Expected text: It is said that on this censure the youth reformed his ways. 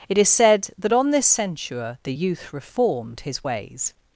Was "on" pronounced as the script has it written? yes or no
yes